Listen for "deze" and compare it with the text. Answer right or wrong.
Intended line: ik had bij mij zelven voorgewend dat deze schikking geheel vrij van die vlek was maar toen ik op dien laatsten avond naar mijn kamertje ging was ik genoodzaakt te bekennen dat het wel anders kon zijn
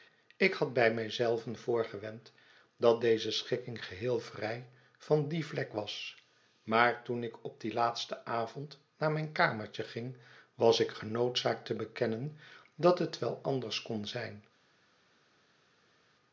right